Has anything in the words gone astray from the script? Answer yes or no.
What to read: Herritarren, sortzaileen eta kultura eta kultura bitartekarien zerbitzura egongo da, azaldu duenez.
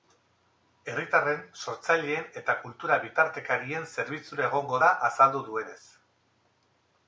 yes